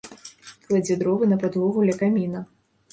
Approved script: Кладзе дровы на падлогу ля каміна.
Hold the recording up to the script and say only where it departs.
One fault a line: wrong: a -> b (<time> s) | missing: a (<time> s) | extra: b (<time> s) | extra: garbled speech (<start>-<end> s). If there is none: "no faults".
no faults